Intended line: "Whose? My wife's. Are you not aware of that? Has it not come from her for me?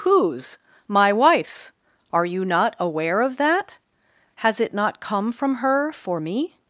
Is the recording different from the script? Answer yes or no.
no